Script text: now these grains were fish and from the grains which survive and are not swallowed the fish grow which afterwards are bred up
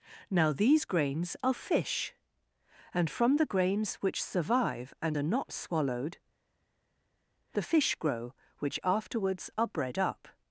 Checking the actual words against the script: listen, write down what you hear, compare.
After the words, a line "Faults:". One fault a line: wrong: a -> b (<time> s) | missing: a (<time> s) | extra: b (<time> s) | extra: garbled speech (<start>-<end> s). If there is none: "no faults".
now these grains are fish and from the grains which survive and are not swallowed the fish grow which afterwards are bred up
Faults:
wrong: were -> are (1.4 s)